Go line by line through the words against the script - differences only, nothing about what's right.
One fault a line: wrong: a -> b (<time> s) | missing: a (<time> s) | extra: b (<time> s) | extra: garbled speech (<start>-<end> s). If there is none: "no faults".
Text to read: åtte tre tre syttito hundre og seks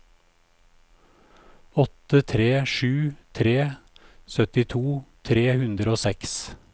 extra: sju (2.6 s)
extra: tre (5.2 s)